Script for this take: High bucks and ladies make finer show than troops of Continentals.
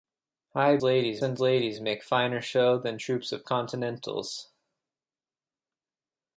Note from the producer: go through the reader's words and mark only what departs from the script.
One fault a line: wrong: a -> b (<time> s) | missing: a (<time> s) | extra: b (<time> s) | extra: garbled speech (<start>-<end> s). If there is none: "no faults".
wrong: bucks -> ladies (0.8 s)